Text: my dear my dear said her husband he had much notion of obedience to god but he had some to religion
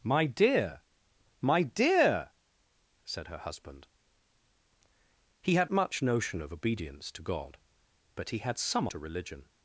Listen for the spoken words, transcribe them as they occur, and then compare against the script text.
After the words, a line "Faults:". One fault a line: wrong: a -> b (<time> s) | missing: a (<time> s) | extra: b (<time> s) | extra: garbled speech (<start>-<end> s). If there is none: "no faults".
my dear my dear said her husband he had much notion of obedience to god but he had some to religion
Faults:
no faults